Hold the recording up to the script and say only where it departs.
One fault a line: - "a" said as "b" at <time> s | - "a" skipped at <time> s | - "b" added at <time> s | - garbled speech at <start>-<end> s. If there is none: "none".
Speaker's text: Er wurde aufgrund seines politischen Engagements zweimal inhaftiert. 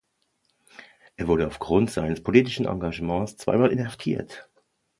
none